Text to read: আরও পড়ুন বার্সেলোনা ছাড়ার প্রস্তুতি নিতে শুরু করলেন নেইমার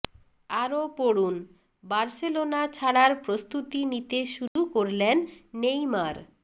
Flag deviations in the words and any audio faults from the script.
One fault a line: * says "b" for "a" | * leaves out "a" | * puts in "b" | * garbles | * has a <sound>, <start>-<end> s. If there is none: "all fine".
* has a dropout, 4.5-4.6 s